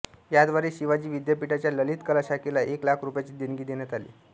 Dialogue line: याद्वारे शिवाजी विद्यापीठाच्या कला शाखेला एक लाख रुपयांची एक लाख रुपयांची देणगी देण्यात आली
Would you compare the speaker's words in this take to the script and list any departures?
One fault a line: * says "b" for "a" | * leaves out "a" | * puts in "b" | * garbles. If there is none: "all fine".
* puts in "ललित"
* leaves out "एक लाख रुपयांची"